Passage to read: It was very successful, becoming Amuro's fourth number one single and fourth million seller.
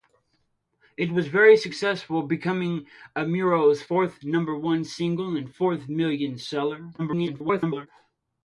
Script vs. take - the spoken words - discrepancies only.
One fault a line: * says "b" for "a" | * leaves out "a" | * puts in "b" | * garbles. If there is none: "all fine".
* garbles